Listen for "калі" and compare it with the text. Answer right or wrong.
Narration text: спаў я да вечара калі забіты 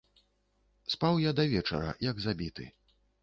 wrong